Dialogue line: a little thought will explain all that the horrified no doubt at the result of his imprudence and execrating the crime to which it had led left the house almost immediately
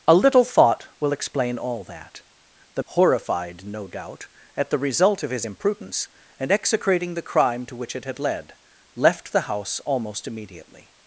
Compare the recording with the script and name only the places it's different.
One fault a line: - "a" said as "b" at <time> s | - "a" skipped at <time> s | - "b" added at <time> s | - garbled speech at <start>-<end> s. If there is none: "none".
none